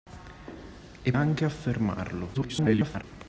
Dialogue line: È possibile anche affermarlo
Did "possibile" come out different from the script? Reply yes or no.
yes